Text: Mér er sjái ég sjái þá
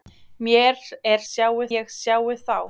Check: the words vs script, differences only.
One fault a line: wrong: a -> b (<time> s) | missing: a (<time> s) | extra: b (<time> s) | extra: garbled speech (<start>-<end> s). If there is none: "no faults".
no faults